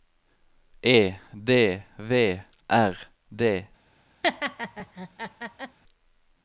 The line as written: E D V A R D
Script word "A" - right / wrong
wrong